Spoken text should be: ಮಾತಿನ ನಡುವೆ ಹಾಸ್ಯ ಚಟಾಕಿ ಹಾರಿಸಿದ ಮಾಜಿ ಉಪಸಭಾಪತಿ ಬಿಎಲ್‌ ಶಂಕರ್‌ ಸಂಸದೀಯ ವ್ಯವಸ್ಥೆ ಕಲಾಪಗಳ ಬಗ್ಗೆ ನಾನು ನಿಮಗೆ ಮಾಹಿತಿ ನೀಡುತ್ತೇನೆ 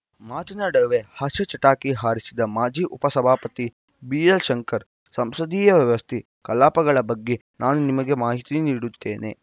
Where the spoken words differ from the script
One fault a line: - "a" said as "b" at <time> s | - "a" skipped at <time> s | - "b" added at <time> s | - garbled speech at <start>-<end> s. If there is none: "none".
none